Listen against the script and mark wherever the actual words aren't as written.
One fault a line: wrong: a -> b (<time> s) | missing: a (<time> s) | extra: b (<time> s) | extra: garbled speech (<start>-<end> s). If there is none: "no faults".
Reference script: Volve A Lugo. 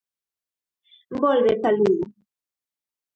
no faults